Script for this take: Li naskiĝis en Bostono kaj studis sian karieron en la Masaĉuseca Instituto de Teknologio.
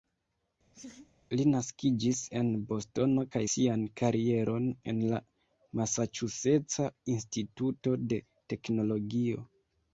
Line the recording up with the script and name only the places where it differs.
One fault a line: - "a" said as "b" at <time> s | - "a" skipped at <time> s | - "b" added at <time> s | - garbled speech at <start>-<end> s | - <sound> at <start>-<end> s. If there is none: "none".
- laugh at 0.7-1.1 s
- "studis" skipped at 3.4 s